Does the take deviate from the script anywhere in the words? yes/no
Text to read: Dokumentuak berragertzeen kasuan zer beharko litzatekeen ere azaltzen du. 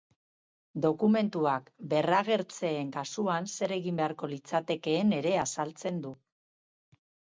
yes